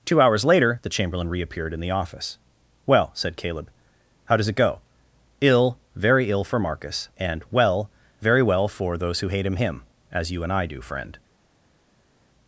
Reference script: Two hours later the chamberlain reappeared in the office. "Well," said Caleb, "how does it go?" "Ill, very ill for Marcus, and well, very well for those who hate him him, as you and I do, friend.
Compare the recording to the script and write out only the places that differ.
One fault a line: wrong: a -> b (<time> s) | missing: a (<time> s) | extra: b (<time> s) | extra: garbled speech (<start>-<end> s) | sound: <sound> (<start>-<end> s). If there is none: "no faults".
no faults